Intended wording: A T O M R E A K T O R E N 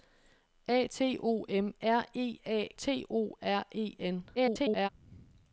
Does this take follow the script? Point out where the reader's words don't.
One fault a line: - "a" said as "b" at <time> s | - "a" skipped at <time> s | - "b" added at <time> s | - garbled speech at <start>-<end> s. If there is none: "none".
- "K" skipped at 2.7 s
- garbled speech at 4.3-4.9 s